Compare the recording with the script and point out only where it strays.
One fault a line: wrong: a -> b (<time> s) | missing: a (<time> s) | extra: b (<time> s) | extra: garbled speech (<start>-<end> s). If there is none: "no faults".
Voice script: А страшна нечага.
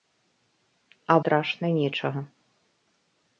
no faults